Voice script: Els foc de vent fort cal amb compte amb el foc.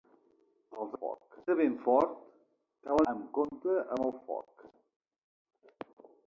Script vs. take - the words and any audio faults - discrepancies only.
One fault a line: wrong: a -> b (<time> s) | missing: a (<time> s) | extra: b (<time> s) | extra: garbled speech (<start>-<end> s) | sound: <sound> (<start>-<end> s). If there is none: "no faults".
no faults